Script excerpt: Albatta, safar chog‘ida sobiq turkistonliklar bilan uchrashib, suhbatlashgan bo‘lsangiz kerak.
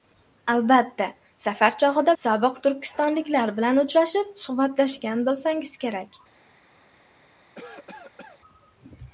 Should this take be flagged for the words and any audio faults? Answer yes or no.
yes